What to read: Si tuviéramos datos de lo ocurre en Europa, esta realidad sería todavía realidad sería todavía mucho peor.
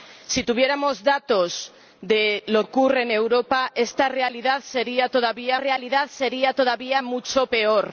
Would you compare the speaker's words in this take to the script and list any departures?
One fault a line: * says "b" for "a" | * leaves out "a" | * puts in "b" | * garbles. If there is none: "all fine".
all fine